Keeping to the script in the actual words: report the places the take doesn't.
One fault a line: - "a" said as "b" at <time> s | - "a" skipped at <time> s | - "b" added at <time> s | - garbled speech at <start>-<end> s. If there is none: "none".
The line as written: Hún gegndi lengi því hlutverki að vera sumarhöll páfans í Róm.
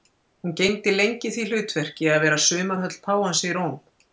none